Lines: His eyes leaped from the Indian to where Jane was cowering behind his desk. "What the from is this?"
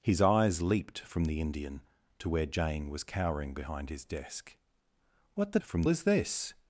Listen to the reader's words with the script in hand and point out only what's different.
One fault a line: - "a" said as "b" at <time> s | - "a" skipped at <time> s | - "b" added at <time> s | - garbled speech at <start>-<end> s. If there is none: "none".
none